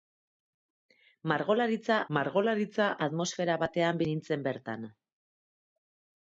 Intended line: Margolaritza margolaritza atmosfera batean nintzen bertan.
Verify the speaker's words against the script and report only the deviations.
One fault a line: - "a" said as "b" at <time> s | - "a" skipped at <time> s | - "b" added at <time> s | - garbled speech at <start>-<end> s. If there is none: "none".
none